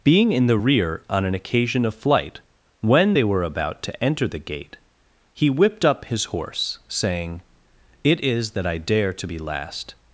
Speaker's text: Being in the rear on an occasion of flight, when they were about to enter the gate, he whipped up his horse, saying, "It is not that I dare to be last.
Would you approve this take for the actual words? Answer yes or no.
no